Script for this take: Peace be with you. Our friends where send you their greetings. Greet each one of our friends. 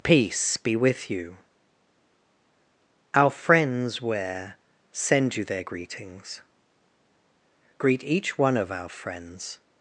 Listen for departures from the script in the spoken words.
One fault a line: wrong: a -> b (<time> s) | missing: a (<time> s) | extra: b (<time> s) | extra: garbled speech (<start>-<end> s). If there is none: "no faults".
no faults